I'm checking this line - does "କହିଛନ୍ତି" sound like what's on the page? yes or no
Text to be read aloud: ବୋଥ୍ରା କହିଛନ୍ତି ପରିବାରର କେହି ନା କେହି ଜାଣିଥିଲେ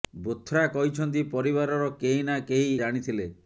yes